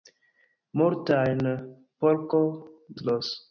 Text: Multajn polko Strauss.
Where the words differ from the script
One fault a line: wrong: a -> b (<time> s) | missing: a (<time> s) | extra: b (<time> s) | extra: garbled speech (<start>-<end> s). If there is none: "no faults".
no faults